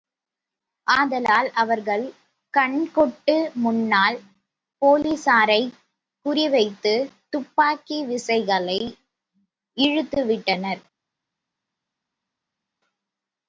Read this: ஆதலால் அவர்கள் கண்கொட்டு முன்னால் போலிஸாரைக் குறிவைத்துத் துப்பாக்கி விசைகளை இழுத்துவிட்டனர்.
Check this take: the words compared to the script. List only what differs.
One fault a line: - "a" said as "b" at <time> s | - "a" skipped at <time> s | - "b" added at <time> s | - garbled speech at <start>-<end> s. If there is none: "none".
none